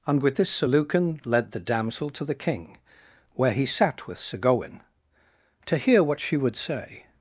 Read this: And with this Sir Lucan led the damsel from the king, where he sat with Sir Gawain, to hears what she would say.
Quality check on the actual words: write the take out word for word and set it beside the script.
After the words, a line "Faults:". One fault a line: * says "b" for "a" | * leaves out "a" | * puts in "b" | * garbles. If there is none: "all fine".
And with this Sir Lucan led the damsel to the king, where he sat with Sir Gawain, to hear what she would say.
Faults:
* says "to" for "from"
* says "hear" for "hears"